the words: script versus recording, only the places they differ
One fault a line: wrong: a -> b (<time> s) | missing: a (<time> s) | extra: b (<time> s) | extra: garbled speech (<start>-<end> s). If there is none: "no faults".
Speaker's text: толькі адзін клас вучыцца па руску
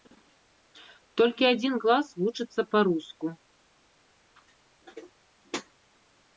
no faults